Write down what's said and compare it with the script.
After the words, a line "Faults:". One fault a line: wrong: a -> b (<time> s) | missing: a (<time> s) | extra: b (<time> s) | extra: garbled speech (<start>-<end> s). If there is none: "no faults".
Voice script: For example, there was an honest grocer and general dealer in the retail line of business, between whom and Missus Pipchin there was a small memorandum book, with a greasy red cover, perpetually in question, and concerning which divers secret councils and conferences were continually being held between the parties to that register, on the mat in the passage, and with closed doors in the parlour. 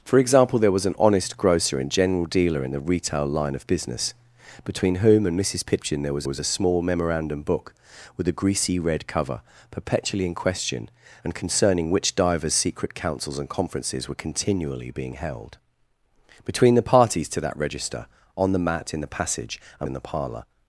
For example, there was an honest grocer and general dealer in the retail line of business, between whom and Missus Pipchin there was was a small memorandum book, with a greasy red cover, perpetually in question, and concerning which divers secret councils and conferences were continually being held between the parties to that register, on the mat in the passage, and in the parlour.
Faults:
extra: was (6.3 s)
missing: with closed doors (19.9 s)